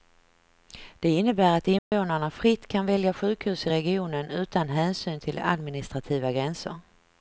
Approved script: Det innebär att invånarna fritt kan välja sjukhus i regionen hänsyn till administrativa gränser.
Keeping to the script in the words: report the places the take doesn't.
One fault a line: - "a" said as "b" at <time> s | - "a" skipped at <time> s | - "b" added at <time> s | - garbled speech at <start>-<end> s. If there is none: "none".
- "utan" added at 4.3 s